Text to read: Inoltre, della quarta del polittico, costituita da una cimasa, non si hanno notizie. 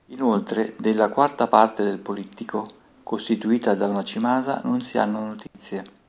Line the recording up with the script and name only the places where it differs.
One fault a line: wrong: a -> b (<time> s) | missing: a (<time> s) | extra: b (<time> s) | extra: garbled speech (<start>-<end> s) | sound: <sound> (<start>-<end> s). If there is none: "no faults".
extra: parte (1.4 s)
sound: dropout (5.5-5.5 s)